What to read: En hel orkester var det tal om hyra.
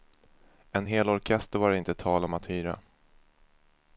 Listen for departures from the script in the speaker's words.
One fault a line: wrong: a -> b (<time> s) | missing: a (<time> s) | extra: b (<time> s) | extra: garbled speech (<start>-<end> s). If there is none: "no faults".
extra: inte (1.8 s)
extra: att (2.3 s)